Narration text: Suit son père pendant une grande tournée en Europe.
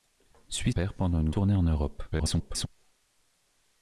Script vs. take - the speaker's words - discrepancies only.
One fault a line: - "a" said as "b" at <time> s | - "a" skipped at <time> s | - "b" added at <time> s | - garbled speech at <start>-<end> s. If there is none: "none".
- "son" skipped at 0.7 s
- "grande" skipped at 1.3 s
- garbled speech at 2.1-2.7 s